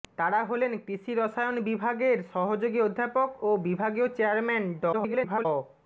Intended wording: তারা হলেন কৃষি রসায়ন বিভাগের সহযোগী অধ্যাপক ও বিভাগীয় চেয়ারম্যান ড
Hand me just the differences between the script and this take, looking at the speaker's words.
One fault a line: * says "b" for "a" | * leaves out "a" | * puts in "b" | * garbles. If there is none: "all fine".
* garbles